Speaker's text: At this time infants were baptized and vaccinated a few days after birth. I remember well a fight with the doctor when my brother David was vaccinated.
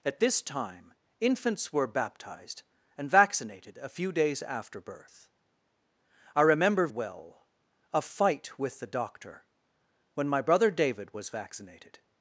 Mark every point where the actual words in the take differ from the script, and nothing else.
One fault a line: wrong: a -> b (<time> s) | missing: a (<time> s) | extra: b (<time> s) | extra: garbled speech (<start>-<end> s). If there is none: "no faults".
no faults